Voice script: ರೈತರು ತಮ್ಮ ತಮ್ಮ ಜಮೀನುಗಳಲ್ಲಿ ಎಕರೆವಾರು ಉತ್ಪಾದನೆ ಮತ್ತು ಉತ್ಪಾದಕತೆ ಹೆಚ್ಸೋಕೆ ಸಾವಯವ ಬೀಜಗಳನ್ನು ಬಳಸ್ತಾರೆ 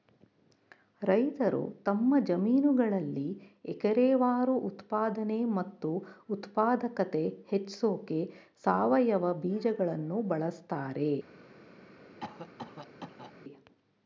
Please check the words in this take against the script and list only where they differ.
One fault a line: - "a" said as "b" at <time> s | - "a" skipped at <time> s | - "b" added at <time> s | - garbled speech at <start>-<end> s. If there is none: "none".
- "ತಮ್ಮ" skipped at 2.1 s